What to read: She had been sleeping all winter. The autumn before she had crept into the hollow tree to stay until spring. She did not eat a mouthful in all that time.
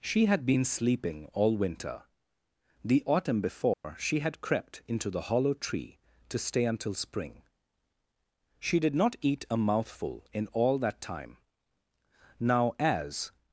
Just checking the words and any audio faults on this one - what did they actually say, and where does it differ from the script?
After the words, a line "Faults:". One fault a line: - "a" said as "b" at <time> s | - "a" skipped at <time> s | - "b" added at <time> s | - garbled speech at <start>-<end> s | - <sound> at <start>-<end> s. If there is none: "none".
She had been sleeping all winter. The autumn before she had crept into the hollow tree to stay until spring. She did not eat a mouthful in all that time. Now as
Faults:
- dropout at 3.7-3.8 s
- "Now as" added at 12.4 s